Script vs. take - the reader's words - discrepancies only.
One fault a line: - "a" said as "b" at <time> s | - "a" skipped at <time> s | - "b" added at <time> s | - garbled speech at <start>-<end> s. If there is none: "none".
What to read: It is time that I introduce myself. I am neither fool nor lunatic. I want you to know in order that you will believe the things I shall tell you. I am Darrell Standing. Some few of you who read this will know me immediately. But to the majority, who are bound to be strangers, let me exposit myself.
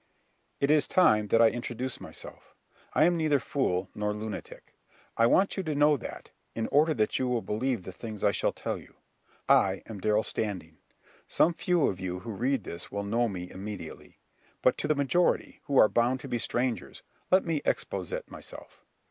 - "that" added at 6.0 s